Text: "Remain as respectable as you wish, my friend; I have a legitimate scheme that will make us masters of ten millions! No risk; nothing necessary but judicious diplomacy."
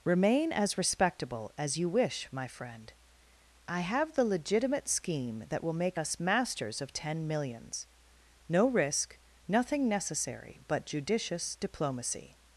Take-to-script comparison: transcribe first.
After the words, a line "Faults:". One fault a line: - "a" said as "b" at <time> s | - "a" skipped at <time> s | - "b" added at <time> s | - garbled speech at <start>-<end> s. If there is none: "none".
"Remain as respectable as you wish, my friend; I have the legitimate scheme that will make us masters of ten millions! No risk; nothing necessary but judicious diplomacy."
Faults:
- "a" said as "the" at 4.1 s